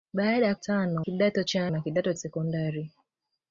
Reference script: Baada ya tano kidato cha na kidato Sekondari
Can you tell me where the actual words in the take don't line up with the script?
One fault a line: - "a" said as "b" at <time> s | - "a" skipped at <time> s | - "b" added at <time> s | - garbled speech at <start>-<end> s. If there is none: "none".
none